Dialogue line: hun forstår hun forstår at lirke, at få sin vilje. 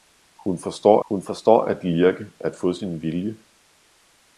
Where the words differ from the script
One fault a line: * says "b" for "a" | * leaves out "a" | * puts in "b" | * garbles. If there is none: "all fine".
all fine